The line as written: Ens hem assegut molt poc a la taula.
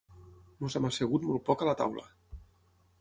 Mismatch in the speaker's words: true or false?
false